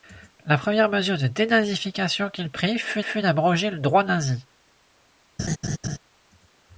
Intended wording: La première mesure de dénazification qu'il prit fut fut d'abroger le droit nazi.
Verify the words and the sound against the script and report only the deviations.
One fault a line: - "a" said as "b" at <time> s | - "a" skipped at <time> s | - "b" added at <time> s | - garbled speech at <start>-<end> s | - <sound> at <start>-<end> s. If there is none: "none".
- laugh at 5.4-6.0 s